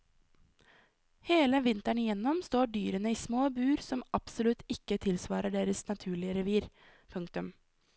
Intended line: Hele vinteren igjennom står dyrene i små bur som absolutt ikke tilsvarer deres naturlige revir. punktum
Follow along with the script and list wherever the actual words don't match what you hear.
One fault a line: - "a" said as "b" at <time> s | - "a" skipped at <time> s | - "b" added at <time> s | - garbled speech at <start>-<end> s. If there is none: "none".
none